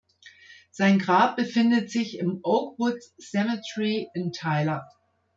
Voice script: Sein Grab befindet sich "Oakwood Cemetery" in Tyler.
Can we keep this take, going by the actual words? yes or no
no